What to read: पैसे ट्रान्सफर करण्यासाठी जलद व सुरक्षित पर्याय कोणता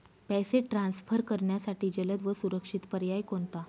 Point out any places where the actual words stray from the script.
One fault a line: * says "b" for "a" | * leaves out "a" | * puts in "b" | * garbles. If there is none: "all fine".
all fine